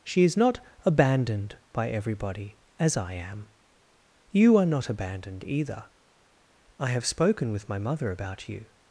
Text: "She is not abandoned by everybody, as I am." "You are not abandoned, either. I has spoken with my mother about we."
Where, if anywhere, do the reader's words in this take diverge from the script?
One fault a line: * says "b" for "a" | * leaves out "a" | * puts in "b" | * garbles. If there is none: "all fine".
* says "have" for "has"
* says "you" for "we"